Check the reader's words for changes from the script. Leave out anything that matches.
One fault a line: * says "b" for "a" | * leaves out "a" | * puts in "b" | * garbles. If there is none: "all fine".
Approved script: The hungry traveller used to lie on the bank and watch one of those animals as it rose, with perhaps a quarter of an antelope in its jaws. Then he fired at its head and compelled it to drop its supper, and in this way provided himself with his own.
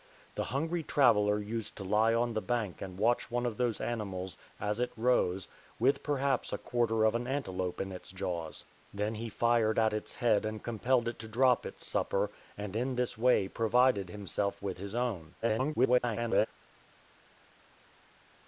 * garbles